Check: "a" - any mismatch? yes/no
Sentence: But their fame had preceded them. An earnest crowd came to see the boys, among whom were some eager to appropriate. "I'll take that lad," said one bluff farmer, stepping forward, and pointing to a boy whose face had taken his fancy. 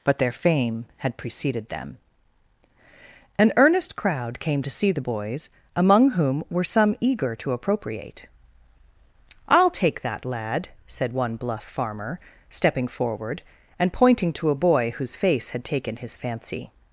no